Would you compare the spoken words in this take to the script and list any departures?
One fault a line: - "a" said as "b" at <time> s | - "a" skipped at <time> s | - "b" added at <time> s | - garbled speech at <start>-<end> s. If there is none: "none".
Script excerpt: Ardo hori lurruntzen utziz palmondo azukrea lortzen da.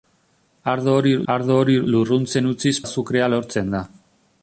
- "ardo hori" added at 1.3 s
- "palmondo" skipped at 2.7 s